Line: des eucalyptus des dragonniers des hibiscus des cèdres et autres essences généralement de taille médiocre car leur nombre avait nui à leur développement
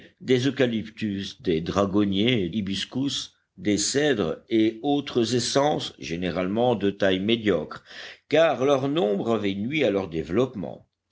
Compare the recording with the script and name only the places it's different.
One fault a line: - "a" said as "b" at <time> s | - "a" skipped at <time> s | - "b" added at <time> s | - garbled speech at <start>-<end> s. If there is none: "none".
- "des" skipped at 2.5 s